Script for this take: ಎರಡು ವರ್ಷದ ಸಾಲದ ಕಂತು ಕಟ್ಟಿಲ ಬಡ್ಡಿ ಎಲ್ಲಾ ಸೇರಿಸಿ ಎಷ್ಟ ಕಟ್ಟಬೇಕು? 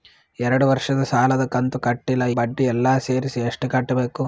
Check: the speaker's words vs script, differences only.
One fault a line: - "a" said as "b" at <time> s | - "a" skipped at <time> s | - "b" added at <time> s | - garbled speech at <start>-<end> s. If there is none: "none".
none